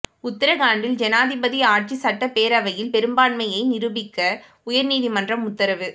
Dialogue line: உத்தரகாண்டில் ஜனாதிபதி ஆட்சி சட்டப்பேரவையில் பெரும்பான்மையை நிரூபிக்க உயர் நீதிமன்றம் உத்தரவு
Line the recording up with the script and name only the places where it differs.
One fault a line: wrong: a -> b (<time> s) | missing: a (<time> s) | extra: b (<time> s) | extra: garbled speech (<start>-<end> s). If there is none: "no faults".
no faults